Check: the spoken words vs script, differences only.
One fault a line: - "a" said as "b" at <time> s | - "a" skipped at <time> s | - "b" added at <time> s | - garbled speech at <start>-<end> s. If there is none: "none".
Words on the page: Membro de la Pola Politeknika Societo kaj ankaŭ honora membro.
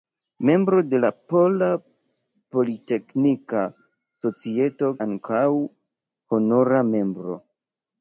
- "kaj" skipped at 4.9 s